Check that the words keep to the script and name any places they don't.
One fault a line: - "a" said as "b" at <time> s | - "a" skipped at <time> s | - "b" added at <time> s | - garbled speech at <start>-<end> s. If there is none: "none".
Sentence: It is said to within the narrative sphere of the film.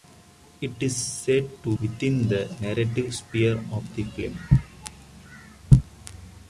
none